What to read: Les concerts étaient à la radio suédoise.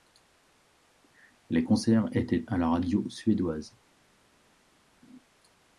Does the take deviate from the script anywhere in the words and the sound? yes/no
no